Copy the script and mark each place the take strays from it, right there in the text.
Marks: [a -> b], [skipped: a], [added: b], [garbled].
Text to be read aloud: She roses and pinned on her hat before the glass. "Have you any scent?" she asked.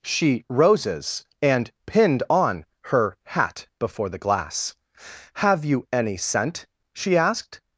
She roses and pinned on her hat before the glass. "Have you any scent?" she asked.